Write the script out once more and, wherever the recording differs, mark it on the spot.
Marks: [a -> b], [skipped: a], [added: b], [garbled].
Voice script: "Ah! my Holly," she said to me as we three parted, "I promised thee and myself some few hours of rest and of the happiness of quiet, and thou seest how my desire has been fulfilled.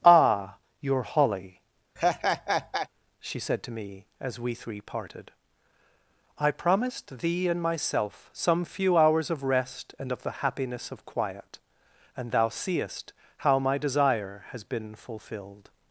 "Ah! [my -> your] Holly," she said to me as we three parted, "I promised thee and myself some few hours of rest and of the happiness of quiet, and thou seest how my desire has been fulfilled.